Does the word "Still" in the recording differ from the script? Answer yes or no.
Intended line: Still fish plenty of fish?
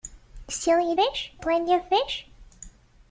no